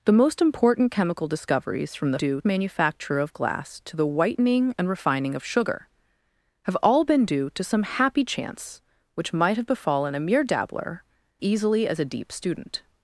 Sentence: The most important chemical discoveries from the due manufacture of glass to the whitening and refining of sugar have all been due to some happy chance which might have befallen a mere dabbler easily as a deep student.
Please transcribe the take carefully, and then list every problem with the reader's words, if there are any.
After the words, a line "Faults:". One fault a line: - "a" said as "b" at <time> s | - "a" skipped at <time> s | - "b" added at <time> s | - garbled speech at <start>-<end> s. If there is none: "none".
The most important chemical discoveries from the due manufacture of glass to the whitening and refining of sugar have all been due to some happy chance which might have befallen a mere dabbler easily as a deep student.
Faults:
none